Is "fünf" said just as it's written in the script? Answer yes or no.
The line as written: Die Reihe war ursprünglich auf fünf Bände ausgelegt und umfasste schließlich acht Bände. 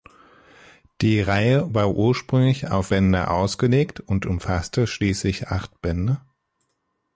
no